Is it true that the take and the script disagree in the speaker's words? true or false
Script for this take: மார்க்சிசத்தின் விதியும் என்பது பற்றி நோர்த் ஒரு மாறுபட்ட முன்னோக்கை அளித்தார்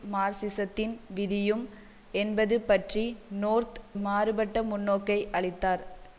true